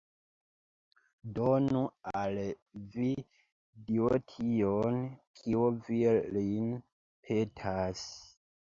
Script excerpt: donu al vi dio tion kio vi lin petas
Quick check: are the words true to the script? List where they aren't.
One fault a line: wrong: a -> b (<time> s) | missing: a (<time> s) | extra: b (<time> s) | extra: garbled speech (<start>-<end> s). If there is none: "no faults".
no faults